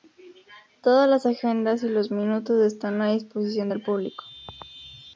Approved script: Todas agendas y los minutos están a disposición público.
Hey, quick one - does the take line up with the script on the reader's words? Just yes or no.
no